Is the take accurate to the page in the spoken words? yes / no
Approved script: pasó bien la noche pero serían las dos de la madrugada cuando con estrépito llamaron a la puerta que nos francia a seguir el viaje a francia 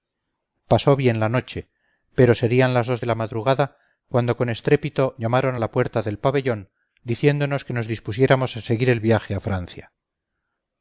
no